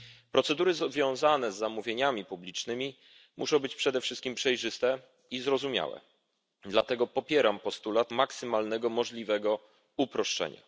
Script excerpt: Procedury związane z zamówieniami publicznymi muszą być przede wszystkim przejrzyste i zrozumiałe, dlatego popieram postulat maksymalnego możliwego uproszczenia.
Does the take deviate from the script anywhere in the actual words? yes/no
no